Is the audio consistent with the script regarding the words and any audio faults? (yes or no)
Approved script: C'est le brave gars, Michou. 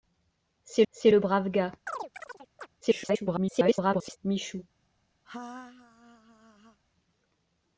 no